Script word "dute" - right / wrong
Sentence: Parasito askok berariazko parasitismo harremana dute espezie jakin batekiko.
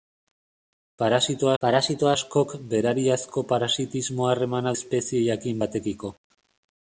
wrong